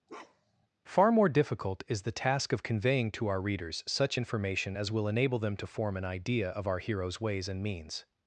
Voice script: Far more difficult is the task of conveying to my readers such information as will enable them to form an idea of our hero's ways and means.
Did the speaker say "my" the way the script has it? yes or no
no